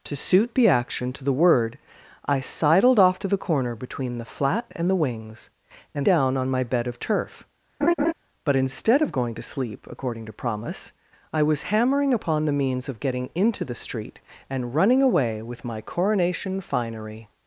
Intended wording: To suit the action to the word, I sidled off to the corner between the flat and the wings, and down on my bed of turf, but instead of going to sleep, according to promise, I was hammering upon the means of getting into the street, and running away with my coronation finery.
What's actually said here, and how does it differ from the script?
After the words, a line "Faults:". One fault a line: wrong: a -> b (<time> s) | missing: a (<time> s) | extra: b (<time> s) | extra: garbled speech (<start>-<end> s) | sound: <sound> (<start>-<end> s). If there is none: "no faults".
To suit the action to the word, I sidled off to the corner between the flat and the wings, and down on my bed of turf, but instead of going to sleep, according to promise, I was hammering upon the means of getting into the street, and running away with my coronation finery.
Faults:
sound: laugh (7.8-8.1 s)